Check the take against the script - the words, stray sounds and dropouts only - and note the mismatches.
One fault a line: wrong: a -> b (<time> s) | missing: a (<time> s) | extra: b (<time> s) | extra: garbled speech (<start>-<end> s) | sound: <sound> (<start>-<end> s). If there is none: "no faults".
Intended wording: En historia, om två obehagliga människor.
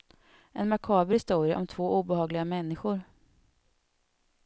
extra: makaber (0.7 s)